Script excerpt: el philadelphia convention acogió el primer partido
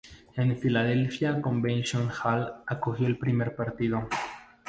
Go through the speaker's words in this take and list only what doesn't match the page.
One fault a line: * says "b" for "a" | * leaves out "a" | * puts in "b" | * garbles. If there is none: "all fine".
* puts in "hall"